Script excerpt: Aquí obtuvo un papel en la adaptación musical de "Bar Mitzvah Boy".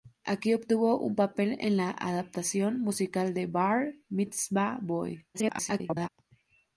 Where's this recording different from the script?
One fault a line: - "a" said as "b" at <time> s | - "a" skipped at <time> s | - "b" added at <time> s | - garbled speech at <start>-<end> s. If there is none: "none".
- garbled speech at 5.3-6.1 s